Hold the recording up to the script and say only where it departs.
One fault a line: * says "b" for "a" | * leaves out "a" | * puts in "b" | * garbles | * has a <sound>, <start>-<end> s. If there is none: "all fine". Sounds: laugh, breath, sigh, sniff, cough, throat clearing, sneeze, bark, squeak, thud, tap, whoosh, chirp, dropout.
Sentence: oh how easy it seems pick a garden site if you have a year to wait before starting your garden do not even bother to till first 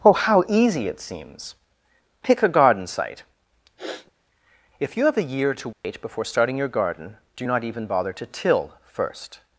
* has a sniff, 3.8-4.1 s
* has a dropout, 5.7-5.8 s